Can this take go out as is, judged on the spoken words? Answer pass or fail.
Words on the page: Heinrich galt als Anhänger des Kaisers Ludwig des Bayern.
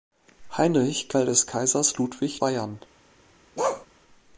fail